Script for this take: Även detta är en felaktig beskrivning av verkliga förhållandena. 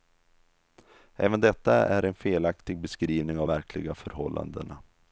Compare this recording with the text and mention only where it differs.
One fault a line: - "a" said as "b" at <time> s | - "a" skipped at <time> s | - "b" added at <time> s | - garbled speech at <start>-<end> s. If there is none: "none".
none